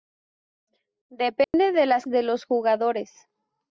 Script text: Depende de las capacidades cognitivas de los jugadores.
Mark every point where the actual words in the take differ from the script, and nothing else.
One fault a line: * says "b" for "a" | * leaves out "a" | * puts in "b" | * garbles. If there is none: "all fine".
* leaves out "capacidades cognitivas"